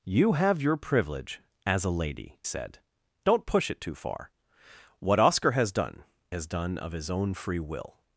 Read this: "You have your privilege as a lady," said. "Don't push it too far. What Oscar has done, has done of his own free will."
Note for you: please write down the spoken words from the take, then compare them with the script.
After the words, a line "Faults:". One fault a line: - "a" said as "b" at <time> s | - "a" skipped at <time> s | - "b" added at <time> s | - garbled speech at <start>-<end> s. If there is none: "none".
"You have your privilege as a lady," said. "Don't push it too far. What Oscar has done, has done of his own free will."
Faults:
none